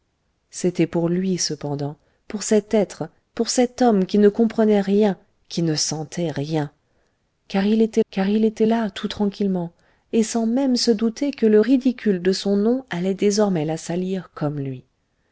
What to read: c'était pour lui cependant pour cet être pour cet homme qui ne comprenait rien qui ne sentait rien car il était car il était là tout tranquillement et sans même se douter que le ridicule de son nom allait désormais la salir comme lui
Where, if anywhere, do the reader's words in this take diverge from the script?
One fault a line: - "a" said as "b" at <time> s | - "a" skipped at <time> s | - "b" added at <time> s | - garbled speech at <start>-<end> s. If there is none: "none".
none